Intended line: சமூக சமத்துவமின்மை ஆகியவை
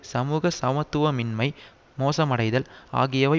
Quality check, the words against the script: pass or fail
fail